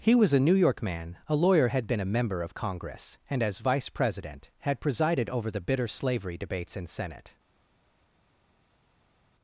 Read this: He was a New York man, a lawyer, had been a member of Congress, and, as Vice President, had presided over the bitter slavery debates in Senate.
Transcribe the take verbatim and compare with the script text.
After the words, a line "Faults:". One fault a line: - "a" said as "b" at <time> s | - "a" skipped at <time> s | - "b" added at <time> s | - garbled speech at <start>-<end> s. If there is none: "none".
He was a New York man, a lawyer, had been a member of Congress, and, as Vice President, had presided over the bitter slavery debates in Senate.
Faults:
none